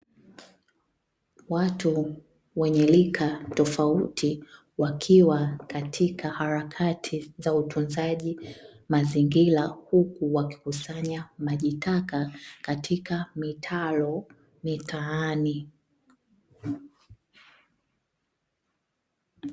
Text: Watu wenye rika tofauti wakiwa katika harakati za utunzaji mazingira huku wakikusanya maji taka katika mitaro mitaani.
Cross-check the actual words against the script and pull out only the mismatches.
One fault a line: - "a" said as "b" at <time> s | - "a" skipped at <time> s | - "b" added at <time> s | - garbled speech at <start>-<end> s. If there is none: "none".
none